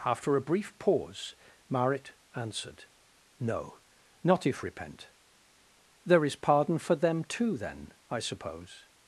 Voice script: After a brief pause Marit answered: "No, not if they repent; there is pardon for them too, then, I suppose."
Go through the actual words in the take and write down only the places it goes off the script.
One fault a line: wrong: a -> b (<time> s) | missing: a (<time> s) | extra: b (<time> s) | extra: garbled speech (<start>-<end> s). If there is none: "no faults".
missing: they (4.6 s)